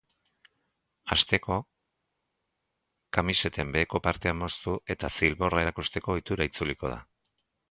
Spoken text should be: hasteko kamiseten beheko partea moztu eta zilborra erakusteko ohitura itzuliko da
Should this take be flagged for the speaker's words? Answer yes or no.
no